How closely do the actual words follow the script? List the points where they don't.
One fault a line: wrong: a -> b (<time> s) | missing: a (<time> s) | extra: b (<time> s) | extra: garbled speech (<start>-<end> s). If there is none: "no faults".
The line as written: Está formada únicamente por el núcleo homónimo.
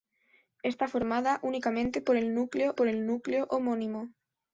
extra: por el núcleo (2.7 s)